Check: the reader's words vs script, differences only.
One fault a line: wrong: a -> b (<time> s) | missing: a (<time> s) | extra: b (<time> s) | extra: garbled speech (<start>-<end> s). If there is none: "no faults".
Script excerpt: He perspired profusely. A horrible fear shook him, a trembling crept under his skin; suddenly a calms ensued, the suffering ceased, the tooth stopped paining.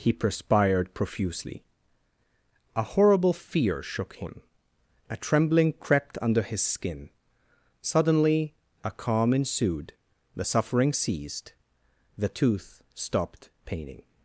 wrong: calms -> calm (8.9 s)